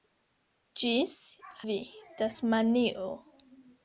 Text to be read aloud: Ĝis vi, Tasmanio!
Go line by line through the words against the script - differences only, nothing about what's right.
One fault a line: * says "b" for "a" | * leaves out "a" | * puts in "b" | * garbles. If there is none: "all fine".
all fine